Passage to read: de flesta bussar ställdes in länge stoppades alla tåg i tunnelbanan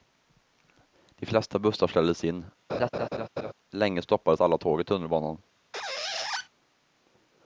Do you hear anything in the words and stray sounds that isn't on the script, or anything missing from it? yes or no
yes